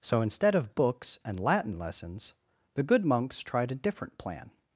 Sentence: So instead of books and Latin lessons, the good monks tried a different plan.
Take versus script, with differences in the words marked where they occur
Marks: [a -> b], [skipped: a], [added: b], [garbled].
So instead of books and Latin lessons, the good monks tried a different plan.